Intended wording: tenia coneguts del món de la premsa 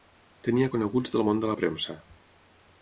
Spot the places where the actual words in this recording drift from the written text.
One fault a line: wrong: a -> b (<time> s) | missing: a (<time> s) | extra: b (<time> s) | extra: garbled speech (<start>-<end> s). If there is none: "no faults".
no faults